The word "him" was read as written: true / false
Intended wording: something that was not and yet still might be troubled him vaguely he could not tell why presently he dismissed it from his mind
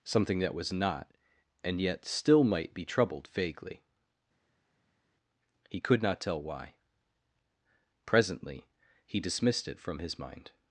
false